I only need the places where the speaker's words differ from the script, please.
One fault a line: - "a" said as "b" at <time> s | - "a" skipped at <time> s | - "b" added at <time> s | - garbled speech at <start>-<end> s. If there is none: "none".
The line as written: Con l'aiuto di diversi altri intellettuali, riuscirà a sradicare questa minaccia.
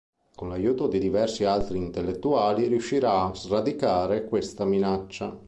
none